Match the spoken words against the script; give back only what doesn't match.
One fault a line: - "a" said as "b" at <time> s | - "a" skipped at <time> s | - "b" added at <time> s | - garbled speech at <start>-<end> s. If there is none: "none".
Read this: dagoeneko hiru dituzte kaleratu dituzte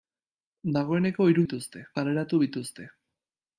none